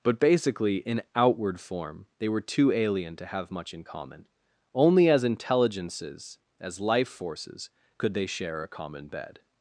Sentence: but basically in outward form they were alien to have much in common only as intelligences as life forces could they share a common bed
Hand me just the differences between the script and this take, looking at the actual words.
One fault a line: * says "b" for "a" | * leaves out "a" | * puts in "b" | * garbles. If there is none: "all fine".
* puts in "too"